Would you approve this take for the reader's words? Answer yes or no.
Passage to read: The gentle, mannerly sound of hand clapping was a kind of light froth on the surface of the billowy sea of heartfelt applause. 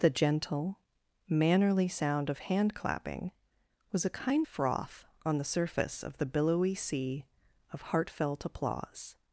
no